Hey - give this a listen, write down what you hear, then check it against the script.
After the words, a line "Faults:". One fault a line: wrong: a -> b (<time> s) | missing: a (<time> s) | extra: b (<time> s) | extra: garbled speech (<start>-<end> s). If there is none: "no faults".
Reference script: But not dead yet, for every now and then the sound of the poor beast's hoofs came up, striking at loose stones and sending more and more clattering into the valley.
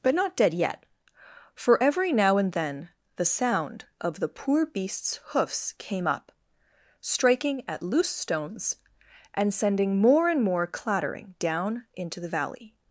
But not dead yet, for every now and then the sound of the poor beast's hoofs came up, striking at loose stones and sending more and more clattering down into the valley.
Faults:
extra: down (11.4 s)